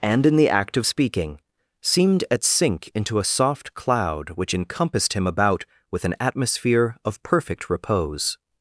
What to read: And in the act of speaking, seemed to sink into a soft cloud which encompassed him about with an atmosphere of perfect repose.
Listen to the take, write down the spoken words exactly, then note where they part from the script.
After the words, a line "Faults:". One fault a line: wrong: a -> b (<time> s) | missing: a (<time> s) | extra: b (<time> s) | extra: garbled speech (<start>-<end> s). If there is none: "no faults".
And in the act of speaking, seemed at sink into a soft cloud which encompassed him about with an atmosphere of perfect repose.
Faults:
wrong: to -> at (2.3 s)